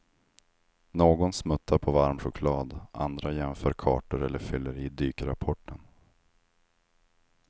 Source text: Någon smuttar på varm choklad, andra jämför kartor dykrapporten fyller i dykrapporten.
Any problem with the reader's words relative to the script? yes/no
yes